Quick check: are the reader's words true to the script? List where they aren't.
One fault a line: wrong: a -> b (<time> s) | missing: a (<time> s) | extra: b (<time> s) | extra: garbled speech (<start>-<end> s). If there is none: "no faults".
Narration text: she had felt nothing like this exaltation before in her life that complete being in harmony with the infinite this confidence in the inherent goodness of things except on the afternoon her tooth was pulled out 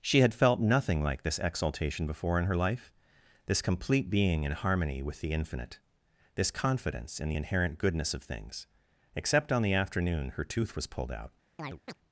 wrong: that -> this (3.5 s)